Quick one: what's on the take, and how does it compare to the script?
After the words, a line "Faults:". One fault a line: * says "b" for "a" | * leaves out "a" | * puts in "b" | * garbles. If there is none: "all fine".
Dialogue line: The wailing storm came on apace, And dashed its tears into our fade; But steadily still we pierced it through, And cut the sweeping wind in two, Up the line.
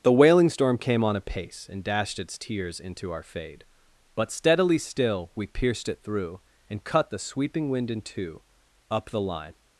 The wailing storm came on apace, And dashed its tears into our fade; But steadily still we pierced it through, And cut the sweeping wind in two, Up the line.
Faults:
all fine